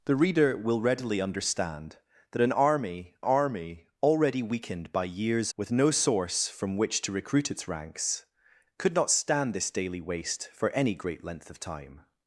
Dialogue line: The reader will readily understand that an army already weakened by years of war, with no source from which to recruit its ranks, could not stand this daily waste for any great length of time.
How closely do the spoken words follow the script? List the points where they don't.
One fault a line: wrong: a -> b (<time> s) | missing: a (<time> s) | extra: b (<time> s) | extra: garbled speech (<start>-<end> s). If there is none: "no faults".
extra: army (3.2 s)
missing: of war (5.5 s)